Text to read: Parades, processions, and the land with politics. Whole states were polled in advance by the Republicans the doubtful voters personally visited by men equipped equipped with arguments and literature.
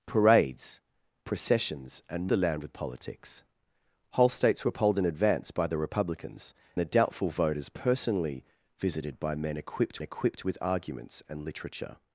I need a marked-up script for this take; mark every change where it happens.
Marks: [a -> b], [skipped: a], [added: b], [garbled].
Parades, processions, and the land with politics. Whole states were polled in advance by the Republicans the doubtful voters personally visited by men equipped equipped with arguments and literature.